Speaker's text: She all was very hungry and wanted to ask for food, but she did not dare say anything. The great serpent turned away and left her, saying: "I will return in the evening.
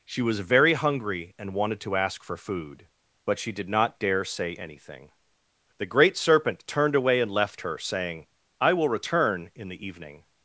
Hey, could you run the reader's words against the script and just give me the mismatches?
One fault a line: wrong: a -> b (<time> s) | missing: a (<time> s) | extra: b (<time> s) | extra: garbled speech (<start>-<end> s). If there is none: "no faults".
missing: all (0.2 s)